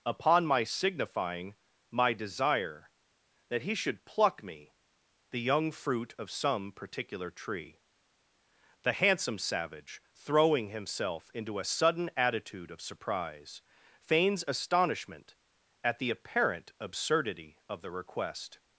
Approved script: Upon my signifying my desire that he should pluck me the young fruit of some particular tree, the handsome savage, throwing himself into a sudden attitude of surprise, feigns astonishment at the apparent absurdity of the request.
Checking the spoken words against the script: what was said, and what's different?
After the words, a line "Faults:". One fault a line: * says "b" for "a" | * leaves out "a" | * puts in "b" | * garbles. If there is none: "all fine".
Upon my signifying my desire that he should pluck me the young fruit of some particular tree, the handsome savage, throwing himself into a sudden attitude of surprise, feigns astonishment at the apparent absurdity of the request.
Faults:
all fine